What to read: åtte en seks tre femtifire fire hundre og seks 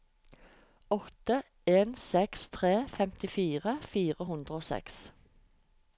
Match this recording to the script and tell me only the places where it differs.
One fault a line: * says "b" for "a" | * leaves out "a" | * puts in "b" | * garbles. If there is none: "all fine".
all fine